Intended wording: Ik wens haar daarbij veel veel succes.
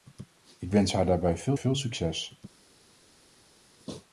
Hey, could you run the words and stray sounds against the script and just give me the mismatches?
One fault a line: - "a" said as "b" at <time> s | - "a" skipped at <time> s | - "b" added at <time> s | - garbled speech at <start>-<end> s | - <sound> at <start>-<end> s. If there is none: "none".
none